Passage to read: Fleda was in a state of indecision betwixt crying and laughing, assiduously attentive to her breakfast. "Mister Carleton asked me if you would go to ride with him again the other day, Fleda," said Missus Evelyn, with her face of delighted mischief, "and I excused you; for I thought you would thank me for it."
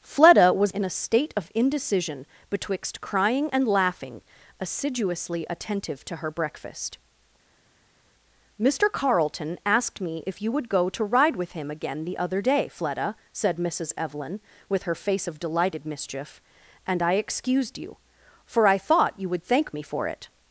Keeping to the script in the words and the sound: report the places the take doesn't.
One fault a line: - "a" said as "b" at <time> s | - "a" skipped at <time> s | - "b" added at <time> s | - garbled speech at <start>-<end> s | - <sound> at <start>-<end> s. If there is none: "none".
none